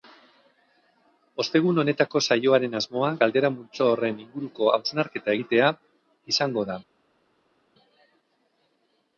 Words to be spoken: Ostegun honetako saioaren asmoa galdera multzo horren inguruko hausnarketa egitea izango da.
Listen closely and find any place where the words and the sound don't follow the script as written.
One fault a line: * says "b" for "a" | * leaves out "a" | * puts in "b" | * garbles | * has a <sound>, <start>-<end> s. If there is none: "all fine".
all fine